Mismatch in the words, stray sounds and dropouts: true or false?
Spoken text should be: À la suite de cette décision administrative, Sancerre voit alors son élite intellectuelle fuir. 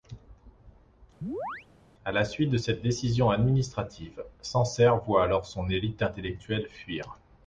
true